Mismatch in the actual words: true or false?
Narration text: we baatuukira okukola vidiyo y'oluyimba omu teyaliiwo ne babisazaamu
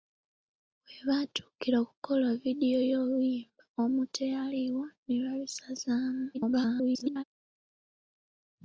true